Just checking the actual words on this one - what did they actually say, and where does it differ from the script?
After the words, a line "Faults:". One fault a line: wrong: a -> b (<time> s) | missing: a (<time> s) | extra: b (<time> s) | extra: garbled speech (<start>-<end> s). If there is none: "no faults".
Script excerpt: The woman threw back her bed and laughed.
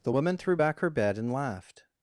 The woman threw back her bed and laughed.
Faults:
no faults